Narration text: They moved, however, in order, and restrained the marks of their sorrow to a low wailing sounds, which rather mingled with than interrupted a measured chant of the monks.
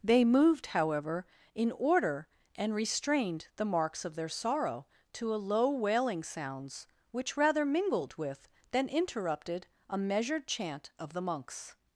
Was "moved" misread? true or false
false